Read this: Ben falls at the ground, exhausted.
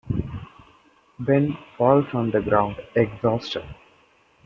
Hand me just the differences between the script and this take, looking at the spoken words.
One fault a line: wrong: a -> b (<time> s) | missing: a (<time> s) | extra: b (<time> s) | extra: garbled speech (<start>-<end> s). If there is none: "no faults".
wrong: at -> on (2.1 s)